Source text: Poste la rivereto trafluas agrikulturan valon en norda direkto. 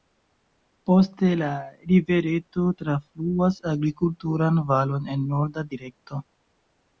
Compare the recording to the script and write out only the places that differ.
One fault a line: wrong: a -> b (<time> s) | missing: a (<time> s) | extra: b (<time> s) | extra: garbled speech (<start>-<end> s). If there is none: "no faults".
no faults